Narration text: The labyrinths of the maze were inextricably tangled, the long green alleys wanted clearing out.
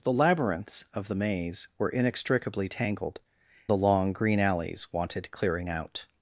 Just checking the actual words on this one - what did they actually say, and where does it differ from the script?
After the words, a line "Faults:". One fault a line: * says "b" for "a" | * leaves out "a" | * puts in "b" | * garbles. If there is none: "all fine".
The labyrinths of the maze were inextricably tangled, the long green alleys wanted clearing out.
Faults:
all fine